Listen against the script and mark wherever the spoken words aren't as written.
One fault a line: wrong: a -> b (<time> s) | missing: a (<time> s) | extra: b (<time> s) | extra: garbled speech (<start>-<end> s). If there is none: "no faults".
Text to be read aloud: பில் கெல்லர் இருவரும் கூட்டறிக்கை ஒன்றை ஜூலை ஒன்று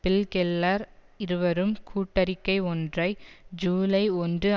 no faults